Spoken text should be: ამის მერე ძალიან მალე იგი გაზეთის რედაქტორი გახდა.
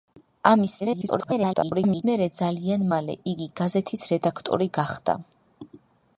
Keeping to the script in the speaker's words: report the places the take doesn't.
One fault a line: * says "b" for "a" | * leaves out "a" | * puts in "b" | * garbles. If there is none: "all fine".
* garbles